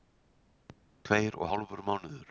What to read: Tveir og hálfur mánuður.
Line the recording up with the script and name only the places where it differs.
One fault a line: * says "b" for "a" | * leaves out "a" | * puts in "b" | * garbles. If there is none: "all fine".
all fine